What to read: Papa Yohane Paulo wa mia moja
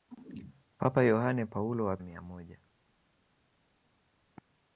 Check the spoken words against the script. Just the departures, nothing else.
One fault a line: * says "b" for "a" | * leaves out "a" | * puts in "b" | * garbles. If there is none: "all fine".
all fine